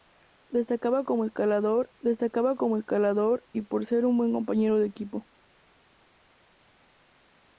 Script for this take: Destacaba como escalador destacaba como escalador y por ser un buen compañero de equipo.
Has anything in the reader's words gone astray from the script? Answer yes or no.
no